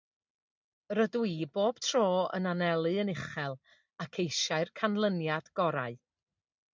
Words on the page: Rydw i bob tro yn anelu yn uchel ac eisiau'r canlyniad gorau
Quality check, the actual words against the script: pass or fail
pass